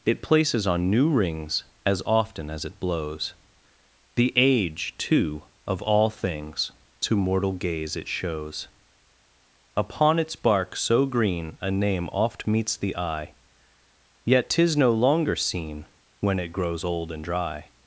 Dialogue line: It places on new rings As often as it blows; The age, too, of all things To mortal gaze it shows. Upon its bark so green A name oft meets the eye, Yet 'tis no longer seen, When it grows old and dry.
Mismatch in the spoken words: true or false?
false